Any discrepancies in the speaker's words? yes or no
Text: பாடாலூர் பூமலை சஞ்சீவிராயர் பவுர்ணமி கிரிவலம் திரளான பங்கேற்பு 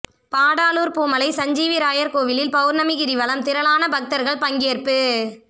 yes